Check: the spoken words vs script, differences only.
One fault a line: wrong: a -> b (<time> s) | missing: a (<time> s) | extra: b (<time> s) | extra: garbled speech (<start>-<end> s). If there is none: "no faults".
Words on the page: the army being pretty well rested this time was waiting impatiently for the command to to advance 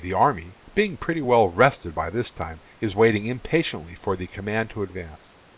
extra: by (1.9 s)
wrong: was -> is (2.8 s)
missing: to (4.8 s)